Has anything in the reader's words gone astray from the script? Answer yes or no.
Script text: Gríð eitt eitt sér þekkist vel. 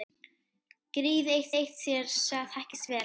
no